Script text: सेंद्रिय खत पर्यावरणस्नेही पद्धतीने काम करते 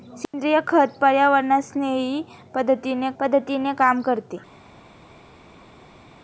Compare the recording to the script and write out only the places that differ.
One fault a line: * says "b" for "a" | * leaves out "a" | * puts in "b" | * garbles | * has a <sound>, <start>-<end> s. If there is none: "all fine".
* puts in "पद्धतीने"